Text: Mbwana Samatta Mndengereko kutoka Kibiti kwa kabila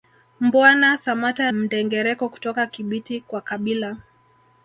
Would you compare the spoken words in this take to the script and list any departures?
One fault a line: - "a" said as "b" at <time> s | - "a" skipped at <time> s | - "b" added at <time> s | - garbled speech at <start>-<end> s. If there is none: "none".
none